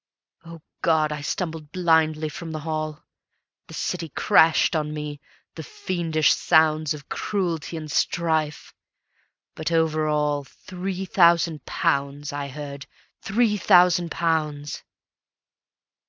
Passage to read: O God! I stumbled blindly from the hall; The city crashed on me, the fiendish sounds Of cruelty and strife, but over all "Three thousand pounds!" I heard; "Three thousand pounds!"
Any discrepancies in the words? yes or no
no